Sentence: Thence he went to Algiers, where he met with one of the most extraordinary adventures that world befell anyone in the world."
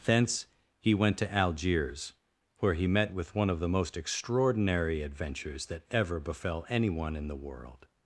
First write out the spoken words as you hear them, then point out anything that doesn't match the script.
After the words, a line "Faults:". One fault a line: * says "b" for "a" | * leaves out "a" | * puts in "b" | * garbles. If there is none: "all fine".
Thence he went to Algiers, where he met with one of the most extraordinary adventures that ever befell anyone in the world."
Faults:
* says "ever" for "world"